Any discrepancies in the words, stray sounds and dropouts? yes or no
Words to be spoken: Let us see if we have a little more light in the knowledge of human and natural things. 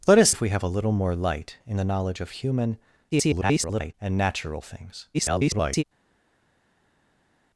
yes